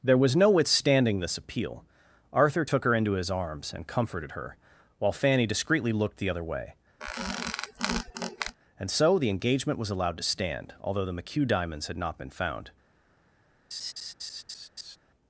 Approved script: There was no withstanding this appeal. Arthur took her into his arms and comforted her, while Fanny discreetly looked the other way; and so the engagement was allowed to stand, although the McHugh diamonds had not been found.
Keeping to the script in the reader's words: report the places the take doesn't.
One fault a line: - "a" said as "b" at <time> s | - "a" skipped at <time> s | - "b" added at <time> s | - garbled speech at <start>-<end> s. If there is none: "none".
none